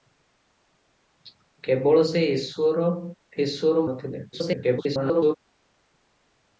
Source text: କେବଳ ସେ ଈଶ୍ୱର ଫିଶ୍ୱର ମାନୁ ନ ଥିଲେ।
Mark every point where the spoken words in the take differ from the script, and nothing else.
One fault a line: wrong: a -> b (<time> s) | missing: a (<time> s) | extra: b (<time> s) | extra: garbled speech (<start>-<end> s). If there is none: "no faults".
missing: ମାନୁ (3.8 s)
extra: garbled speech (4.3-5.4 s)